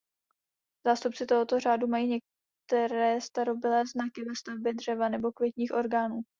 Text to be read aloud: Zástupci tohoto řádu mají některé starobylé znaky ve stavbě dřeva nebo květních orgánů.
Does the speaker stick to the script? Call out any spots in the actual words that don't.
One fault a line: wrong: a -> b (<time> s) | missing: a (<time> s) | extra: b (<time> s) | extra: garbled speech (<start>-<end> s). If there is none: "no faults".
no faults